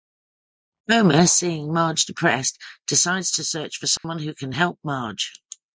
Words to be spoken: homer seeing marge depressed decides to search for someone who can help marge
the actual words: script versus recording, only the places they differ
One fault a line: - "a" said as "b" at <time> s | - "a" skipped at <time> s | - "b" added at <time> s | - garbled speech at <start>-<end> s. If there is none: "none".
none